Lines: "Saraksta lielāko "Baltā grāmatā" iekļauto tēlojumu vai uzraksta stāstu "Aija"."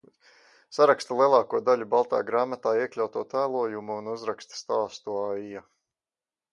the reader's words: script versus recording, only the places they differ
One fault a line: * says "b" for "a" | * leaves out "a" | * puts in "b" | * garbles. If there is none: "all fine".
* puts in "daļu"
* says "un" for "vai"